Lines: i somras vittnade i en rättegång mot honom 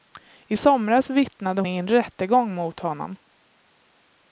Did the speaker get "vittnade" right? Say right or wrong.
right